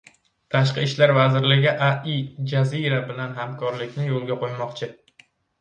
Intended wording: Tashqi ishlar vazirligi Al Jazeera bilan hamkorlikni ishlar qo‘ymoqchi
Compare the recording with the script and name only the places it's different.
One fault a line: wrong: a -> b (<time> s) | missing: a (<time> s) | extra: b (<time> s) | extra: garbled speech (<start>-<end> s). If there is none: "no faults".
wrong: ishlar -> yo‘lga (4.1 s)